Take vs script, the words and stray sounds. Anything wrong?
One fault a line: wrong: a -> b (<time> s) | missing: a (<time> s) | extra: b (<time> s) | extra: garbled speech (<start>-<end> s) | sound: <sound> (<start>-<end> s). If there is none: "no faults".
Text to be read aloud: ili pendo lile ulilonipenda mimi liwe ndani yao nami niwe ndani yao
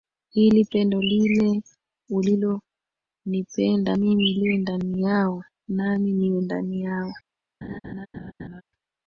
sound: laugh (7.6-8.6 s)